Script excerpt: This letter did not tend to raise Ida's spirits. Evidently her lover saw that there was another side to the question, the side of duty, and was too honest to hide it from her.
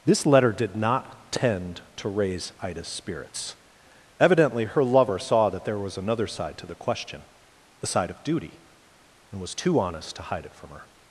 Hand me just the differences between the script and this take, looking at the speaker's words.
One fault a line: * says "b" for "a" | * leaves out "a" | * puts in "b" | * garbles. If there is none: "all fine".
all fine